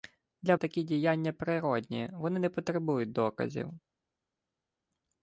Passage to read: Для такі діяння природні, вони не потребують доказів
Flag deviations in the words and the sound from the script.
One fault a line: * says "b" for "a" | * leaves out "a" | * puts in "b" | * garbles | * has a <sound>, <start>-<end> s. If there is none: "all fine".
all fine